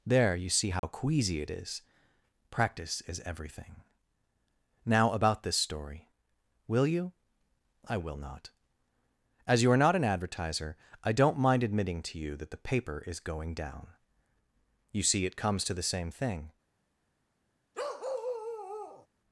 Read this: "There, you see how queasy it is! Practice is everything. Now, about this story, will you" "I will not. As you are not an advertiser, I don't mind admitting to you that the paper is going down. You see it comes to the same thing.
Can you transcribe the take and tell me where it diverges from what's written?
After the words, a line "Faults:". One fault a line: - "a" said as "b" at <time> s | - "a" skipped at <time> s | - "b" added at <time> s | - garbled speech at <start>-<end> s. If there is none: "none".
"There, you see how queasy it is! Practice is everything. Now, about this story, will you" "I will not. As you are not an advertiser, I don't mind admitting to you that the paper is going down. You see it comes to the same thing.
Faults:
none